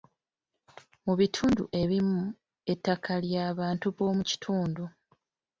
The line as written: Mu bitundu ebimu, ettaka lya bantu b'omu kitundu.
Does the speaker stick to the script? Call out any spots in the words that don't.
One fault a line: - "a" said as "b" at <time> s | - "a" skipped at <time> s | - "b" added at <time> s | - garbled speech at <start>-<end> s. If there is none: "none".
none